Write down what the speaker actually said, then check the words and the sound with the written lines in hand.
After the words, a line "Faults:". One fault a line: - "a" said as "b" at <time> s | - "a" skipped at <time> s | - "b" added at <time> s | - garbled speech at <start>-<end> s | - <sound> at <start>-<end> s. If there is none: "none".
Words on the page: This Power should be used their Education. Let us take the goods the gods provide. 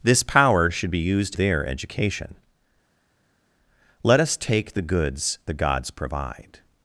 This Power should be used their Education. Let us take the goods the gods provide.
Faults:
none